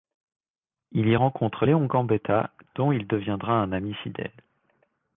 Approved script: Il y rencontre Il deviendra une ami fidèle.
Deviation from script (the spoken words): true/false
true